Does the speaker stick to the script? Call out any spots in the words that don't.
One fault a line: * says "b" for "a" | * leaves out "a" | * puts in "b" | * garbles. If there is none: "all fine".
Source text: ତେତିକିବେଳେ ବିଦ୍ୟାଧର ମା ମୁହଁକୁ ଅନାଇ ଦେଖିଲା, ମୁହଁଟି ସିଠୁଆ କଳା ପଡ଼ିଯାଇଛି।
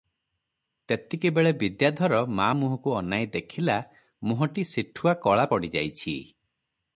all fine